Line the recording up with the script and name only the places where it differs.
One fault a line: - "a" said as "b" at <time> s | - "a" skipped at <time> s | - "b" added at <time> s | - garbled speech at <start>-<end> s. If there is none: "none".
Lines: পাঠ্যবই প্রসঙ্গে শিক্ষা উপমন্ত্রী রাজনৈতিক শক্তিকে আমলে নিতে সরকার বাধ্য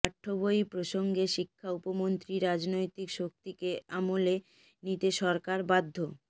none